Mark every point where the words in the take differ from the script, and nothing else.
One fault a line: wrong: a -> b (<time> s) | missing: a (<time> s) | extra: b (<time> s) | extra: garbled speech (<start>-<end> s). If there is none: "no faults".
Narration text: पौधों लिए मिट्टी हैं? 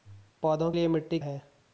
no faults